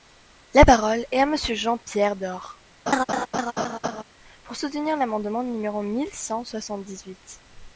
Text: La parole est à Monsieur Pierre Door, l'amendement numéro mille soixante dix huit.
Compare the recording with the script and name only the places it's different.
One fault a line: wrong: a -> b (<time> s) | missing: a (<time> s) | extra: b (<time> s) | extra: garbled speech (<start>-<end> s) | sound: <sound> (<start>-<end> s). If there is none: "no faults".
extra: Jean (1.5 s)
sound: laugh (2.9-4.0 s)
extra: pour soutenir (4.4 s)
extra: cent (6.1 s)